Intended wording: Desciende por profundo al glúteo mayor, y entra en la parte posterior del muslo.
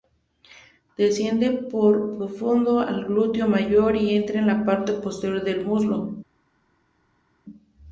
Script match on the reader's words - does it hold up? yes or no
yes